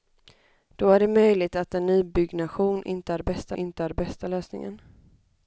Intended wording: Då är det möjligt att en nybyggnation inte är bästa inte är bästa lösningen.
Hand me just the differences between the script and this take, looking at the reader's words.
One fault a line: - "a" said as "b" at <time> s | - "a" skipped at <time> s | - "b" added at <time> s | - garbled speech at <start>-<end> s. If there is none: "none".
none